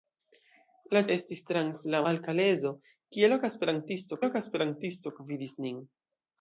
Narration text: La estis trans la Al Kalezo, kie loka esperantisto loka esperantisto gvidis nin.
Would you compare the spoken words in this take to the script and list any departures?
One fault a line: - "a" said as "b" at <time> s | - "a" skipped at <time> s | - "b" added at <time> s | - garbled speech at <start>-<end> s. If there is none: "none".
none